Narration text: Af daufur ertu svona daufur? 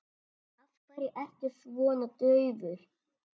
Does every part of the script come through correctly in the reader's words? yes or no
no